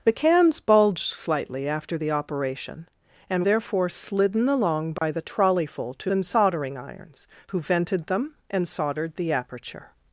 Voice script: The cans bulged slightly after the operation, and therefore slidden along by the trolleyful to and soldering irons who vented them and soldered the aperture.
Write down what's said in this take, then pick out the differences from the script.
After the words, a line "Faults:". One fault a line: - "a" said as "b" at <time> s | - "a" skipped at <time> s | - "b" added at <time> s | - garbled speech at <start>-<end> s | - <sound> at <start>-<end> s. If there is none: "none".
The cans bulged slightly after the operation, and therefore slidden along by the trolleyful to and soldering irons who vented them and soldered the aperture.
Faults:
- dropout at 5.0-5.0 s